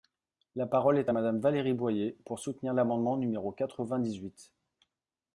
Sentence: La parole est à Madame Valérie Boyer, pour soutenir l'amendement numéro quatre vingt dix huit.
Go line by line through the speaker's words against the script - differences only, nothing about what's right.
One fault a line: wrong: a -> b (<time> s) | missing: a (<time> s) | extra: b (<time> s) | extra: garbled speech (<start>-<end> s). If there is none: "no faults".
no faults